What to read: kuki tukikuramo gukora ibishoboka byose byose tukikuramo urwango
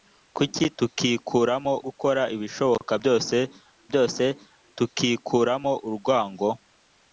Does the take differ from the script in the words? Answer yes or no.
no